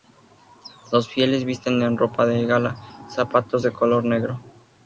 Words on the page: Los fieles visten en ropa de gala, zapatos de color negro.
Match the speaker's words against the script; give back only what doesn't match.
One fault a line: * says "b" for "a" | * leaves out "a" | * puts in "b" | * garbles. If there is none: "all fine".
all fine